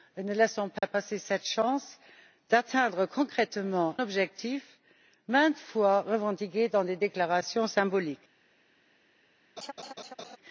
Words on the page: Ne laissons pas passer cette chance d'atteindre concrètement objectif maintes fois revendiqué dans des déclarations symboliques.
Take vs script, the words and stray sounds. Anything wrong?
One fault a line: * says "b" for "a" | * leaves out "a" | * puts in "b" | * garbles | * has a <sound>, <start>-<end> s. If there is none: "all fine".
* has a dropout, 0.8-0.8 s
* has a laugh, 9.6-10.4 s